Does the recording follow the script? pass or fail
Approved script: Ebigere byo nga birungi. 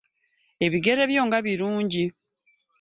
pass